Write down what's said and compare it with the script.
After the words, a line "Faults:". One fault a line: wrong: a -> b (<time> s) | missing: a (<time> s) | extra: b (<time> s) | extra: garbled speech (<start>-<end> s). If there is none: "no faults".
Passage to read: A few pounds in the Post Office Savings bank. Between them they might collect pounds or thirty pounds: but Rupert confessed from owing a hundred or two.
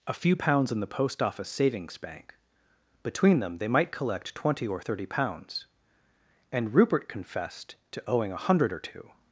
A few pounds in the Post Office Savings bank. Between them they might collect twenty or thirty pounds: and Rupert confessed to owing a hundred or two.
Faults:
wrong: pounds -> twenty (4.3 s)
wrong: but -> and (6.5 s)
wrong: from -> to (7.9 s)